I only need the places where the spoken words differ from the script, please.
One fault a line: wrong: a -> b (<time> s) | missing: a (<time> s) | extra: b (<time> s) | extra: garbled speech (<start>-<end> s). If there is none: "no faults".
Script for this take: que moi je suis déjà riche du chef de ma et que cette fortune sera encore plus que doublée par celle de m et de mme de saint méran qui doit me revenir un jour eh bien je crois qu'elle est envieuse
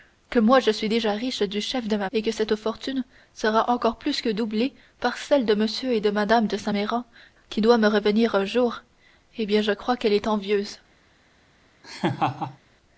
no faults